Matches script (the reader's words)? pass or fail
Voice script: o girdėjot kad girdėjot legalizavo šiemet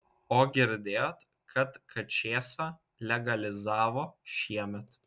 fail